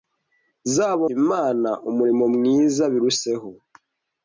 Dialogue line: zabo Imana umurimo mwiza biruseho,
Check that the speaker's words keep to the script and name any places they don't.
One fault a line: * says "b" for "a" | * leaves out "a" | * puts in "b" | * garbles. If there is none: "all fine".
all fine